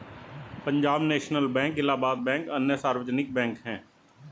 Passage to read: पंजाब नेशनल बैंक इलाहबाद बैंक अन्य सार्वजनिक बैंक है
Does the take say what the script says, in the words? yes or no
yes